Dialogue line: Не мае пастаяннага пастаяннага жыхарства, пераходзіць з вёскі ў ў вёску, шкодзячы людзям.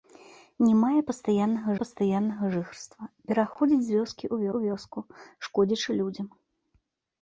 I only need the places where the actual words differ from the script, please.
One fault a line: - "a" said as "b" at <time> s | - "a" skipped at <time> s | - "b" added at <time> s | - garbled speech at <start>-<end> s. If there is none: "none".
none